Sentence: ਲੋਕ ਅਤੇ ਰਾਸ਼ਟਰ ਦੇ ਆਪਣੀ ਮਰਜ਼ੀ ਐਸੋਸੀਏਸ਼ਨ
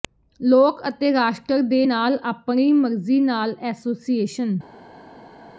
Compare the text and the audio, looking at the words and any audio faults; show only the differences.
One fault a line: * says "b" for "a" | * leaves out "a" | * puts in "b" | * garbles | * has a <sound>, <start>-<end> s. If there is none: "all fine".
* puts in "ਨਾਲ"
* puts in "ਨਾਲ"